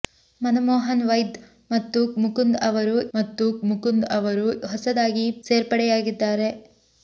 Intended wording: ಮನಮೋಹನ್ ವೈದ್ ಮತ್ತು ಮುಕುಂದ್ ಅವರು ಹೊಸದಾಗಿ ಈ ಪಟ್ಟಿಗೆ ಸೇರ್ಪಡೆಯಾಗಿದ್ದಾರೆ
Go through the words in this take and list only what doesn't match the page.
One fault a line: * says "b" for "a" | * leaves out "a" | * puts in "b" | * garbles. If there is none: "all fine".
* puts in "ಮತ್ತು ಮುಕುಂದ್ ಅವರು"
* leaves out "ಪಟ್ಟಿಗೆ"